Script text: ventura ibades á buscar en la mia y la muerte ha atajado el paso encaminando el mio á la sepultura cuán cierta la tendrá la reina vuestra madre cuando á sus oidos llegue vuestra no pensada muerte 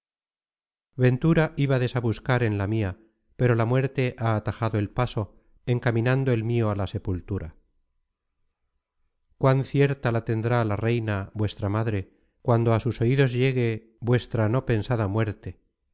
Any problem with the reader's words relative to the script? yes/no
yes